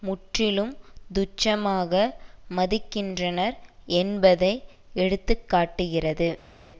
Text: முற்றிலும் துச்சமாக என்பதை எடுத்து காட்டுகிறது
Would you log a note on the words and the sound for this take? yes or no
yes